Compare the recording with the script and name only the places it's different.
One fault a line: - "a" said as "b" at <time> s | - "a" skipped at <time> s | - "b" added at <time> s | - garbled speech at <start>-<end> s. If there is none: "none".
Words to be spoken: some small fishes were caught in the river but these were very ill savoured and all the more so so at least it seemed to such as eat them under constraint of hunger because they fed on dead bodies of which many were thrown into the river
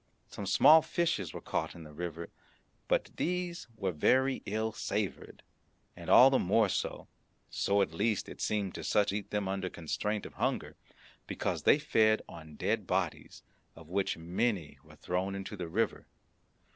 - "as" skipped at 9.1 s